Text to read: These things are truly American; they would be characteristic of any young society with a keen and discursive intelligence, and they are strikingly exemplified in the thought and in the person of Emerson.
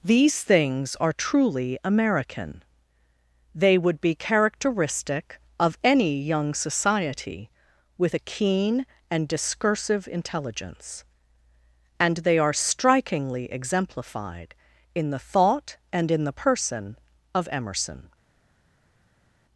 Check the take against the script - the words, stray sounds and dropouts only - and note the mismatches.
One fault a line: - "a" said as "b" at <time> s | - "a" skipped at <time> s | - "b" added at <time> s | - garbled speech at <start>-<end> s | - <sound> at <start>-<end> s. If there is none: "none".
none